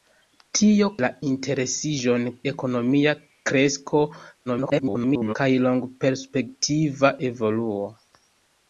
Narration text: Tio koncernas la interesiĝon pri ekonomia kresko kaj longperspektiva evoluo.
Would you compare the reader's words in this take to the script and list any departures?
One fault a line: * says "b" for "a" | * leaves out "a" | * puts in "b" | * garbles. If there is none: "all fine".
* leaves out "koncernas"
* leaves out "pri"
* garbles